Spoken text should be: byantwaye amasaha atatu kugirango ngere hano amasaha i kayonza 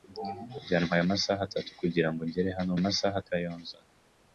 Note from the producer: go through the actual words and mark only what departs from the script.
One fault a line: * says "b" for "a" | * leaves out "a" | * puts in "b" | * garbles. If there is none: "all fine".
all fine